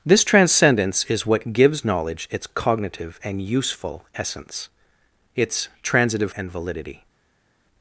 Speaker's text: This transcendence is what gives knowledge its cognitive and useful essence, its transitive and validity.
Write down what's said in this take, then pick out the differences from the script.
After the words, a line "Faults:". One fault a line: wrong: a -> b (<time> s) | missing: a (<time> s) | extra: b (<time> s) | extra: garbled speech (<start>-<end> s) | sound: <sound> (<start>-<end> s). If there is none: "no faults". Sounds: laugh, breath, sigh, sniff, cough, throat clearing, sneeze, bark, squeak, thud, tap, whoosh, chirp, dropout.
This transcendence is what gives knowledge its cognitive and useful essence, its transitive and validity.
Faults:
no faults